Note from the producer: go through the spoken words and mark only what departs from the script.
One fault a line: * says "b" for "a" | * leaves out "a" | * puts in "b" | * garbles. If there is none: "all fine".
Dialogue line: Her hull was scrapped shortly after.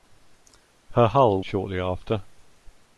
* leaves out "was scrapped"